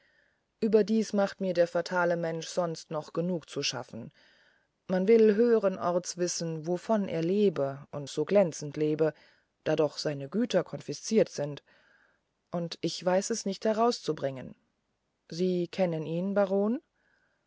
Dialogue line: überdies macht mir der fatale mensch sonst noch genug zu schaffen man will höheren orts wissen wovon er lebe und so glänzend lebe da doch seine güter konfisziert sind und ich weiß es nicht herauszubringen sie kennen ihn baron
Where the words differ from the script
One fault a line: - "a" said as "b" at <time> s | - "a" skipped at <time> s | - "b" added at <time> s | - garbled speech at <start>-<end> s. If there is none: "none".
none